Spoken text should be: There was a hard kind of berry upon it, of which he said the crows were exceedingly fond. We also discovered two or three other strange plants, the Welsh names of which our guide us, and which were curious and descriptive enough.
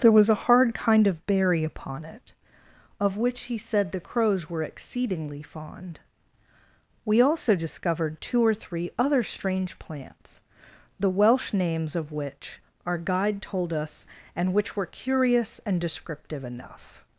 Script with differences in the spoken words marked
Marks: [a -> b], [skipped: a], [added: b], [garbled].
There was a hard kind of berry upon it, of which he said the crows were exceedingly fond. We also discovered two or three other strange plants, the Welsh names of which our guide [added: told] us, and which were curious and descriptive enough.